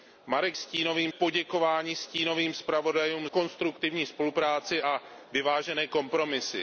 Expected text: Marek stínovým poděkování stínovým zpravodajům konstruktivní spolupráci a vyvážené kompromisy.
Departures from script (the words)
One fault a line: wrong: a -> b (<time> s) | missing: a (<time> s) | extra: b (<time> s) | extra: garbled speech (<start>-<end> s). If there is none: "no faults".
no faults